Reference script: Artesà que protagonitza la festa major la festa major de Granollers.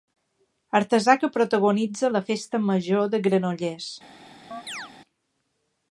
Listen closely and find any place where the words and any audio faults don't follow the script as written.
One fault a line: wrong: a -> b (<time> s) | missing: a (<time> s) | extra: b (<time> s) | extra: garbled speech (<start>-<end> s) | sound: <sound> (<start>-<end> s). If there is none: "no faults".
missing: la festa major (3.1 s)
sound: chirp (4.5-4.9 s)